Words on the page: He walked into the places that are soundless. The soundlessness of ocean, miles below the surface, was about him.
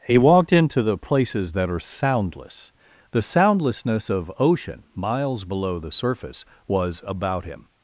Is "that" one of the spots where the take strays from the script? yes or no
no